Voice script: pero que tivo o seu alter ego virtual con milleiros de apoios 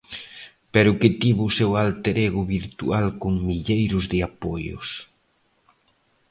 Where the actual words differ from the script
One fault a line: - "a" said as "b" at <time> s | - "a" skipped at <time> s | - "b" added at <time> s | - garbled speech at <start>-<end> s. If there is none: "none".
none